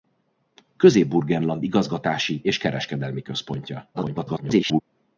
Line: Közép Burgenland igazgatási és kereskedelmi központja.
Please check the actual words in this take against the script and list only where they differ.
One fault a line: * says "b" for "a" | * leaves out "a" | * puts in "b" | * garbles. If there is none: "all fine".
* garbles